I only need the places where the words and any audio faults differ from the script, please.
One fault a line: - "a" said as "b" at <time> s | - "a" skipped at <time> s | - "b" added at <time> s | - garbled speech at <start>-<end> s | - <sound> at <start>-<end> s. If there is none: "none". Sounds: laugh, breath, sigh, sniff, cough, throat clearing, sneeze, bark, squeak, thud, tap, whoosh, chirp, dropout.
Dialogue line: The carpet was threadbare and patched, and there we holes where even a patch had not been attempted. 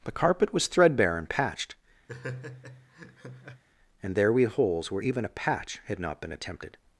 - laugh at 2.1-3.6 s